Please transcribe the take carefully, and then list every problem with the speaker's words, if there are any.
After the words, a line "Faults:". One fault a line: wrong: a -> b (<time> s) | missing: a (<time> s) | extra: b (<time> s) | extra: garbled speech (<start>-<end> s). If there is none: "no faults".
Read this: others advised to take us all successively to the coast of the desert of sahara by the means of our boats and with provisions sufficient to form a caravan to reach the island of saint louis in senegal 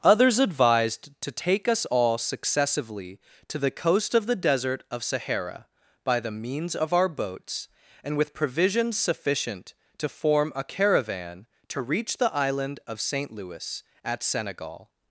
others advised to take us all successively to the coast of the desert of sahara by the means of our boats and with provisions sufficient to form a caravan to reach the island of saint louis at senegal
Faults:
wrong: in -> at (14.0 s)